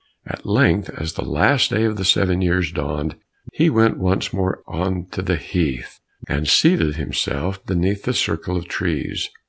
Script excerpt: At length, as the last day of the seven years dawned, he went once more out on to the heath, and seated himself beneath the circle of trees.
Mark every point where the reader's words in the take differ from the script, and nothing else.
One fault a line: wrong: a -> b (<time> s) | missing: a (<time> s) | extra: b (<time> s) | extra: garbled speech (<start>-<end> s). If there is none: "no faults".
missing: out (4.6 s)